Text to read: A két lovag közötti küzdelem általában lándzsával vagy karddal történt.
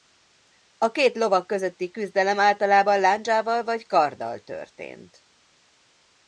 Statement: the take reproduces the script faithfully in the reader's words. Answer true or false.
true